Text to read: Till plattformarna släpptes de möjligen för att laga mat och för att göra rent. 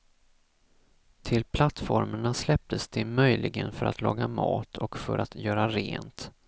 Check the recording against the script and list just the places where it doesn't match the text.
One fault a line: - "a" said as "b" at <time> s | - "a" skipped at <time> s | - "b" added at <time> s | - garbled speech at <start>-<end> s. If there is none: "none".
none